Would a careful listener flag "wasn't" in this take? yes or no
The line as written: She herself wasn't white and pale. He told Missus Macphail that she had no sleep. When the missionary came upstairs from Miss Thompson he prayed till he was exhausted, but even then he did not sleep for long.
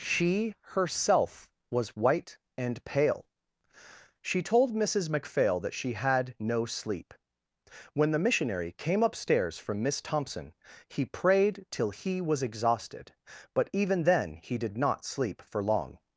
yes